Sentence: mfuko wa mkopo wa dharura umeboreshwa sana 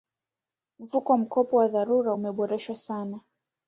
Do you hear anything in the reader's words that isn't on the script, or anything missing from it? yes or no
no